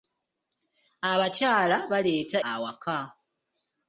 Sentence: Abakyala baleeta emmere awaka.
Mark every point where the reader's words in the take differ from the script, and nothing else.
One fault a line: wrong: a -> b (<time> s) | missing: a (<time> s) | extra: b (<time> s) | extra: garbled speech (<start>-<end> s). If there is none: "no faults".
missing: emmere (2.4 s)